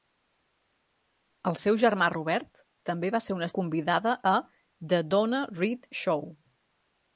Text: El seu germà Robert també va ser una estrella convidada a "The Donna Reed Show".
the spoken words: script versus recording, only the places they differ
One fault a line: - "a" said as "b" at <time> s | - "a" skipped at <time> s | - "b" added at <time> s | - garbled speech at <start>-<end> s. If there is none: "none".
- "estrella" skipped at 3.5 s